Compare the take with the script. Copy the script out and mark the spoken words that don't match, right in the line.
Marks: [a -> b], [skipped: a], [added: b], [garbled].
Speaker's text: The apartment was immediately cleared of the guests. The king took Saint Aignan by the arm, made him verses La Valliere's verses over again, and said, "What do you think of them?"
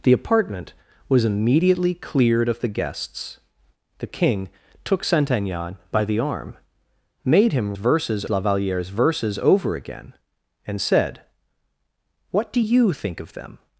The apartment was immediately cleared of the guests. The king took Saint Aignan by the arm, made him verses La Valliere's verses over again, and said, "What do you think of them?"